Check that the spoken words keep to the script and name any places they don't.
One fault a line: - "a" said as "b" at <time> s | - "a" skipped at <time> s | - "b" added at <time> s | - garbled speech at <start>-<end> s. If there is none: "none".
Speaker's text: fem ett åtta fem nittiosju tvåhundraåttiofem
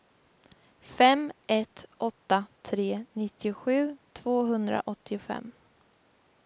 - "fem" said as "tre" at 2.6 s